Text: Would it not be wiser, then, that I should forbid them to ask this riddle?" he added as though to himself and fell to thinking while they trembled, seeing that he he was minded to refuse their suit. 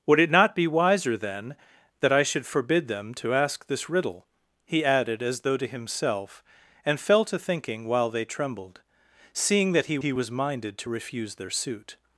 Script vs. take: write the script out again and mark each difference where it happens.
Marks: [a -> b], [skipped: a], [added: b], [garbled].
Would it not be wiser, then, that I should forbid them to ask this riddle?" he added as though to himself and fell to thinking while they trembled, seeing that he he was minded to refuse their suit.